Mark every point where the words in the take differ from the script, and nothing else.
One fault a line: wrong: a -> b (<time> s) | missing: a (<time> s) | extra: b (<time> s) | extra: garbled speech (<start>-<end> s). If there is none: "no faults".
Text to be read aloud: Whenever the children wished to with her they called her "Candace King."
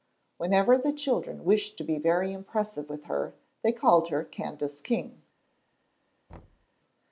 extra: be very impressive (1.8 s)